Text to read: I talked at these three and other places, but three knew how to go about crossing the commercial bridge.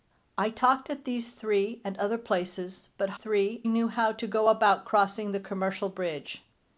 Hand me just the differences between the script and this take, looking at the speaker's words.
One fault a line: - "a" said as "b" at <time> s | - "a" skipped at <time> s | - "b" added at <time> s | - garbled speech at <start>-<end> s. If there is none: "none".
none